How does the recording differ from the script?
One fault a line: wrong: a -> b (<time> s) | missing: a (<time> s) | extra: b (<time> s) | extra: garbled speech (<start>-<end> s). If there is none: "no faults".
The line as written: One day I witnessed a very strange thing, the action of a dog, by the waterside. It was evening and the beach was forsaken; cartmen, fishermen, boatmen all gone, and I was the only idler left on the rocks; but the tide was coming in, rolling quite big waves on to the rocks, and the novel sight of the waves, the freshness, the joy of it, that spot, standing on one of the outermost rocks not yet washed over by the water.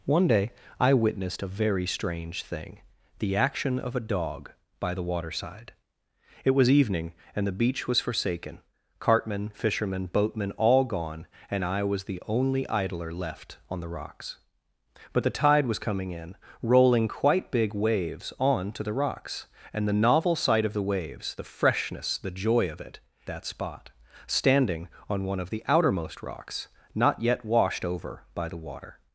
no faults